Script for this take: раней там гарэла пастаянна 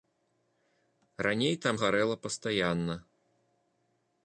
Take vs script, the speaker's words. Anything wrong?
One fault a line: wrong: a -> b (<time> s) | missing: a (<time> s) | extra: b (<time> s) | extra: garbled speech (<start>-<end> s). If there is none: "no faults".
no faults